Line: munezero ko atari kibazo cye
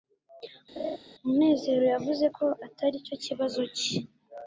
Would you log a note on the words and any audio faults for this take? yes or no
yes